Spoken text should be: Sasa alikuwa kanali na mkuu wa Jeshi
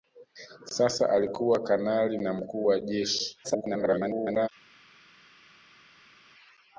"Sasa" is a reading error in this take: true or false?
false